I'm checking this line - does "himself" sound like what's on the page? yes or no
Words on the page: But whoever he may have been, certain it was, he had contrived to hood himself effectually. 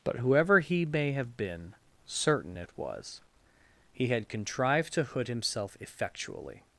yes